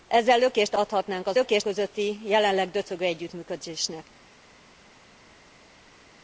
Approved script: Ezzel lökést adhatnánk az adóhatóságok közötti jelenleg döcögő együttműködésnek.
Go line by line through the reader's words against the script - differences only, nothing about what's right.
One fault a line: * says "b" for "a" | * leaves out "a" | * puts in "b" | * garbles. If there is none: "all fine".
* says "lökést" for "adóhatóságok"